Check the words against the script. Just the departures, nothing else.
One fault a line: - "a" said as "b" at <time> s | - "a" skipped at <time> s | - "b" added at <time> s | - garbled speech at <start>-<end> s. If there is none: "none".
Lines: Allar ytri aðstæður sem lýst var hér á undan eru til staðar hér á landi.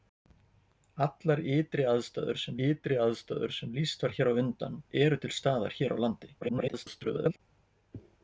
- "ytri aðstæður sem" added at 2.7 s
- garbled speech at 6.4-7.4 s